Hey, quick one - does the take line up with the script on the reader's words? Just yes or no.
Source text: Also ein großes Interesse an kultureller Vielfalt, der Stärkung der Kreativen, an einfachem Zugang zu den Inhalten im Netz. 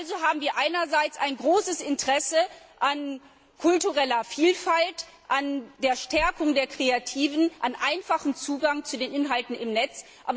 no